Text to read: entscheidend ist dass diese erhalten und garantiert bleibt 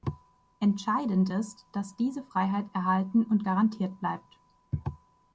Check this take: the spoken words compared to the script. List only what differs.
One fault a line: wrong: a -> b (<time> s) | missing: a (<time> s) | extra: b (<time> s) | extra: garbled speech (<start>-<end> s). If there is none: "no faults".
extra: freiheit (2.2 s)